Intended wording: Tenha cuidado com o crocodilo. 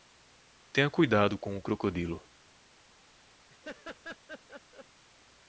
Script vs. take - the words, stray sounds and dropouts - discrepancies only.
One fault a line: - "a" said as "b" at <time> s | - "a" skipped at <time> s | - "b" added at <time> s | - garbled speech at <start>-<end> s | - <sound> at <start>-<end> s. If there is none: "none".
- laugh at 3.5-4.9 s